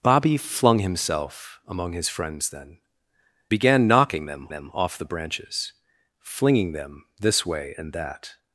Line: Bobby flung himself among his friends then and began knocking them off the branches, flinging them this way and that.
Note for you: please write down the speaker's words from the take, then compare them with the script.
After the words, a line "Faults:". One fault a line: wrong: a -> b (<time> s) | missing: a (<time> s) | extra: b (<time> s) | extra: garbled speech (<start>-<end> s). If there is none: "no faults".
Bobby flung himself among his friends then began knocking them them off the branches, flinging them this way and that.
Faults:
missing: and (2.8 s)
extra: them (4.5 s)